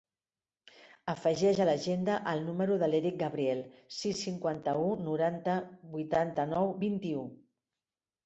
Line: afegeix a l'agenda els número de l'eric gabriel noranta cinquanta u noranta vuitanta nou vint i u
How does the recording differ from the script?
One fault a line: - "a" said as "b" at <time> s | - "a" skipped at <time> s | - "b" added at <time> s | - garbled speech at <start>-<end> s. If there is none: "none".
- "els" said as "el" at 2.3 s
- "noranta" said as "sis" at 4.0 s